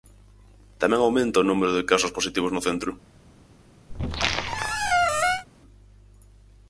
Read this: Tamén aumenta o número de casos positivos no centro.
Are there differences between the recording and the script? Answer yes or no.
no